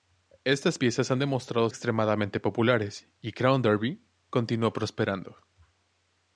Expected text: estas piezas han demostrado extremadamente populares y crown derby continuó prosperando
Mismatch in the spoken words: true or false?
false